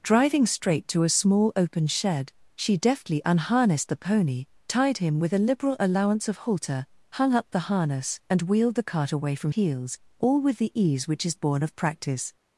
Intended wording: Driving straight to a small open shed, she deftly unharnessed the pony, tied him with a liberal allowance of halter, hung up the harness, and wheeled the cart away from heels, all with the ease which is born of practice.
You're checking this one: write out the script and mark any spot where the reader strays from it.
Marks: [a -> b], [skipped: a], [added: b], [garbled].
Driving straight to a small open shed, she deftly unharnessed the pony, tied him with a liberal allowance of halter, hung up the harness, and wheeled the cart away from heels, all with the ease which is born of practice.